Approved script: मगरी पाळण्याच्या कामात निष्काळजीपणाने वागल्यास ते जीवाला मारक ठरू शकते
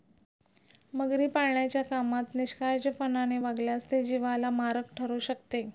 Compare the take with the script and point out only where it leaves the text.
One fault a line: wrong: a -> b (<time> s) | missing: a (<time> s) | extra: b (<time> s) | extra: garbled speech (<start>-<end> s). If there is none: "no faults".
no faults